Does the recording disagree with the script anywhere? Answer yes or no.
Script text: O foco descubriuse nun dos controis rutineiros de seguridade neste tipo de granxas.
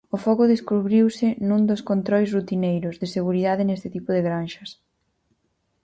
no